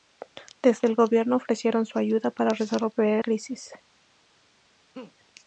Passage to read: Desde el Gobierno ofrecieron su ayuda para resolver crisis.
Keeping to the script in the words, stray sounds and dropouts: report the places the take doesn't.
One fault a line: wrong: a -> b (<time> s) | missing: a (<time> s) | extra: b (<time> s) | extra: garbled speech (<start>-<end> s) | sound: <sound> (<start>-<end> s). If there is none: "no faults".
sound: laugh (4.9-5.1 s)